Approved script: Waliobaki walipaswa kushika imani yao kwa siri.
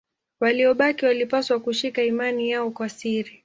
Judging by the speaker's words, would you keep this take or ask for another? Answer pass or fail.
pass